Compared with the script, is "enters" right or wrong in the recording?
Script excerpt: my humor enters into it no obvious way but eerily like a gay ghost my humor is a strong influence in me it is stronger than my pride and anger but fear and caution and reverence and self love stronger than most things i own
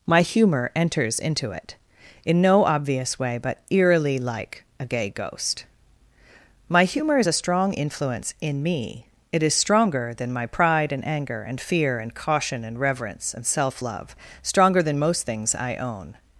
right